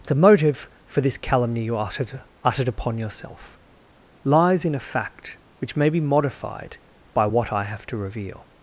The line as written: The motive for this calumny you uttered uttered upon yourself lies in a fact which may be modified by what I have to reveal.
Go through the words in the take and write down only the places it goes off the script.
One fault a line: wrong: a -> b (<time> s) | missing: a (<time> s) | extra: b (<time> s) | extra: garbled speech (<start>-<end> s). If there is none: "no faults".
no faults